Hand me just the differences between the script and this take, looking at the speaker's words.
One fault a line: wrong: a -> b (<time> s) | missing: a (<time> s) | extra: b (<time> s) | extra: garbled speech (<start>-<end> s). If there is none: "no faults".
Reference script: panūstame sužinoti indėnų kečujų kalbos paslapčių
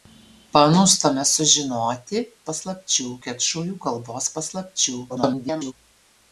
wrong: indėnų -> paslapčių (2.5 s)
extra: garbled speech (5.1-5.7 s)